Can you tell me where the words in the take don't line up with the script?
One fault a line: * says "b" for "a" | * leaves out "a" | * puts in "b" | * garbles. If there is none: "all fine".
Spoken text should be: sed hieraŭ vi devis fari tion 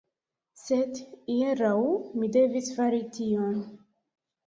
* says "mi" for "vi"